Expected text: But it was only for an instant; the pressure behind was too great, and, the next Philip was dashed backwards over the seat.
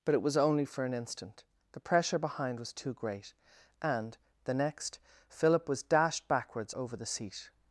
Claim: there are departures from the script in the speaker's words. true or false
false